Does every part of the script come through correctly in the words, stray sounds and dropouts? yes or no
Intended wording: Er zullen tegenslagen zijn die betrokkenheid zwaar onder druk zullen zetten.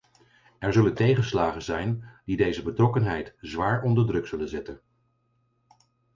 no